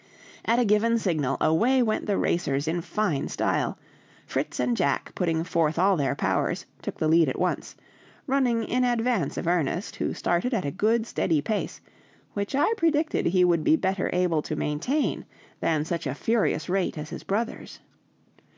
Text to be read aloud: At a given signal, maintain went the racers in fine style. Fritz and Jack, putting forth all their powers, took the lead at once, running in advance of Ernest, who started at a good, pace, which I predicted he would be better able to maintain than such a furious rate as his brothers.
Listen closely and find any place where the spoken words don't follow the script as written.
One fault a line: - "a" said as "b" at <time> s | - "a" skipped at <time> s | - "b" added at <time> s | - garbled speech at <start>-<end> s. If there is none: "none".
- "maintain" said as "away" at 1.4 s
- "steady" added at 11.1 s